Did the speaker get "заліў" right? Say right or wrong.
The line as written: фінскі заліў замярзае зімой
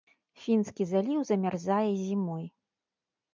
right